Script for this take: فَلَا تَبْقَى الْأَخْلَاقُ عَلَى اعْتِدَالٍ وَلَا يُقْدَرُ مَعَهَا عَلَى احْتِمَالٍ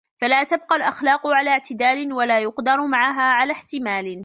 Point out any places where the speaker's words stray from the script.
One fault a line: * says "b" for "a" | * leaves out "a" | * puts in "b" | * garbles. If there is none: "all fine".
all fine